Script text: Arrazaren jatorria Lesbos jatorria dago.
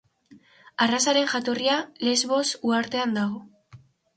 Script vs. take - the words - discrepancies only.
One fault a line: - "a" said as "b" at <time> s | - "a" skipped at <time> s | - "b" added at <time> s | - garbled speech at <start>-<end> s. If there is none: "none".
- "jatorria" said as "uhartean" at 2.7 s